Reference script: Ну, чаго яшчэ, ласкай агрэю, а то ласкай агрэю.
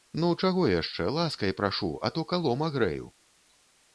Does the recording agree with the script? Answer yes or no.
no